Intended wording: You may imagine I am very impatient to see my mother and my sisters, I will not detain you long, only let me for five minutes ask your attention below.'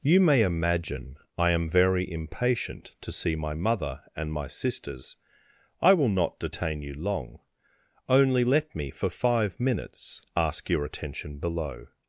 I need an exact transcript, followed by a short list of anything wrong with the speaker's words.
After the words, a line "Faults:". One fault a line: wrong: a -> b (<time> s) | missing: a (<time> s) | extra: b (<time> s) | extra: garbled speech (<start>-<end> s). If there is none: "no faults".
You may imagine I am very impatient to see my mother and my sisters, I will not detain you long, only let me for five minutes ask your attention below.'
Faults:
no faults